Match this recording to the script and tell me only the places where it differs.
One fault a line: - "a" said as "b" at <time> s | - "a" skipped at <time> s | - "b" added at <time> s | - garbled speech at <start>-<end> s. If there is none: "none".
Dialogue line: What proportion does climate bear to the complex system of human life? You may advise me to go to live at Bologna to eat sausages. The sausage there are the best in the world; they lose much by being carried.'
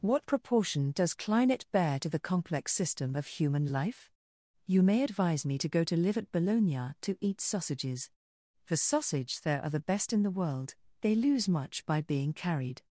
none